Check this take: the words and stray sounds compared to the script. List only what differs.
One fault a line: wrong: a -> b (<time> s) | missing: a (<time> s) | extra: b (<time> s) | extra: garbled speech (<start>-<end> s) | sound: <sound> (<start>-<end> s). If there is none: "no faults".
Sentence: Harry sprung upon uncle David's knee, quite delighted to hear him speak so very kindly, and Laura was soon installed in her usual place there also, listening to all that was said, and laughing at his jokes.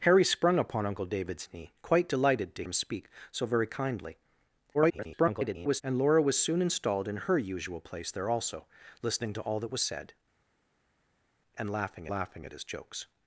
missing: hear (2.6 s)
extra: garbled speech (4.7-5.8 s)
extra: laughing (12.1 s)